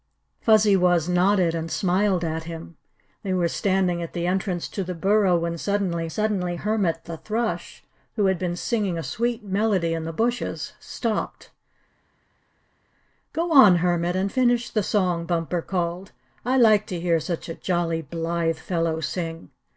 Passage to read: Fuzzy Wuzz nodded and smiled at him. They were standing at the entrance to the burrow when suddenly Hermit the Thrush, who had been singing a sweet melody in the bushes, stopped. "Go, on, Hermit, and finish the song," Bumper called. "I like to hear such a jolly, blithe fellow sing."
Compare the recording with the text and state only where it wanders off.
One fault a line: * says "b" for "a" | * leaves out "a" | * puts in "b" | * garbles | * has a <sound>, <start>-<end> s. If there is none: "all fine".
* puts in "suddenly"